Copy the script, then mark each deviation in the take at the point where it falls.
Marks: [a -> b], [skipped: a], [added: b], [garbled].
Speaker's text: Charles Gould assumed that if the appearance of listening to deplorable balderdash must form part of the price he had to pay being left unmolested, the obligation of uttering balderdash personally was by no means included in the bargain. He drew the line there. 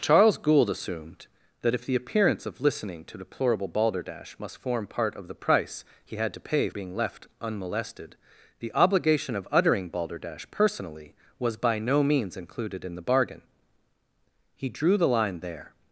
Charles Gould assumed that if the appearance of listening to deplorable balderdash must form part of the price he had to pay being left unmolested, the obligation of uttering balderdash personally was by no means included in the bargain. He drew the line there.